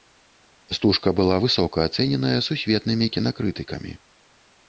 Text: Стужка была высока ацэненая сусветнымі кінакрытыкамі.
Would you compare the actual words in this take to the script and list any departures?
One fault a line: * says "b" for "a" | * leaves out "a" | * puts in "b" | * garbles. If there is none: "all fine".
all fine